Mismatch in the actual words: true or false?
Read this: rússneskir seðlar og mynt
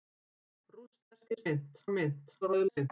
true